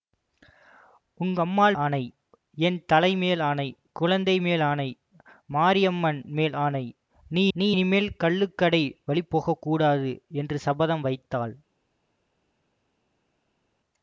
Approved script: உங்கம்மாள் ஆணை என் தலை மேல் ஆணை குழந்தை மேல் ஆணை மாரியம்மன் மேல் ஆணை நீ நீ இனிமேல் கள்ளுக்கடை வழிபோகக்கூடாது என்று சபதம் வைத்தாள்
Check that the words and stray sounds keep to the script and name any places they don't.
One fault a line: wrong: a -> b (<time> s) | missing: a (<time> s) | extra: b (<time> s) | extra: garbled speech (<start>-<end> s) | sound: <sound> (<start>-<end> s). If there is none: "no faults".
no faults